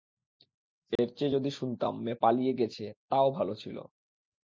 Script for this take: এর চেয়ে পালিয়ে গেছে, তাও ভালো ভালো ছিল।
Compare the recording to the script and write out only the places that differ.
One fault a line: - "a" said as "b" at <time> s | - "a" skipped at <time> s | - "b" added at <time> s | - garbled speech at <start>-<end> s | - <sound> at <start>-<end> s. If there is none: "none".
- dropout at 1.0-1.0 s
- "যদি শুনতাম মেয়ে" added at 1.3 s
- "ভালো" skipped at 3.5 s